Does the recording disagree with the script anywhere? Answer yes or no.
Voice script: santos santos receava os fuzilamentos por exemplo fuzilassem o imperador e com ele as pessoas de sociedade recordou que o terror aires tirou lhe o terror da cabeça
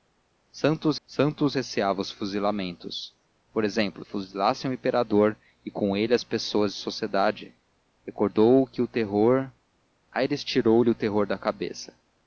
no